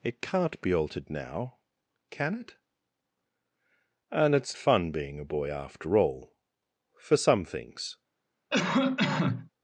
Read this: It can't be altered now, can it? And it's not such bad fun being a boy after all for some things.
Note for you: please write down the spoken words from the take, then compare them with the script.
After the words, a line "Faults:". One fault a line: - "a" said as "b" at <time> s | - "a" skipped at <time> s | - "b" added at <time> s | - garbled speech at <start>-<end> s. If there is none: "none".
It can't be altered now, can it? And it's fun being a boy after all for some things.
Faults:
- "not such bad" skipped at 4.6 s